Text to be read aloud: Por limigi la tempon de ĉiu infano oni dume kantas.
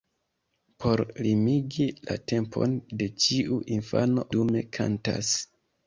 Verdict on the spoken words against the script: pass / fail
fail